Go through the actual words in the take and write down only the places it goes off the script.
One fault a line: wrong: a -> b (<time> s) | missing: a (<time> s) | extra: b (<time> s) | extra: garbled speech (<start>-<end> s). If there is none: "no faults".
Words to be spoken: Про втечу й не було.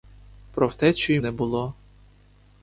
no faults